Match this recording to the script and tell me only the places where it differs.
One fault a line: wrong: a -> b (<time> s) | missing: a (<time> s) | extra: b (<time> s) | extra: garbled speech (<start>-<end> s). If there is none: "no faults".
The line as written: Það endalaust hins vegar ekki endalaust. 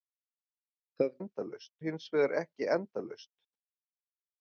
no faults